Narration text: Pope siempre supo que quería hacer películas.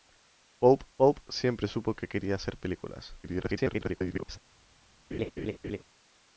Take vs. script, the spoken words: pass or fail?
fail